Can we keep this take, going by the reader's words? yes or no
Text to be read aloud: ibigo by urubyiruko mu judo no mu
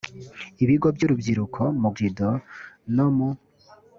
yes